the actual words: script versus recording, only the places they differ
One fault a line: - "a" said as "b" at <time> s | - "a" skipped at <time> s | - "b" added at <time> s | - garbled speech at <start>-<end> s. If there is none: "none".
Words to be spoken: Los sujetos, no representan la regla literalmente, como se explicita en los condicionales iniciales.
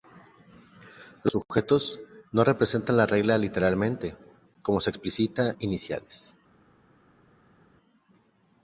- "en los condicionales" skipped at 5.5 s